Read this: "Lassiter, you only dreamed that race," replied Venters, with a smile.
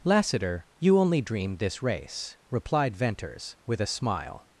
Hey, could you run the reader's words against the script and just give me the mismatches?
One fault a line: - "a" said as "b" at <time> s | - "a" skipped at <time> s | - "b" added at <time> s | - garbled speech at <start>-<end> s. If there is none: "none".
- "that" said as "this" at 1.6 s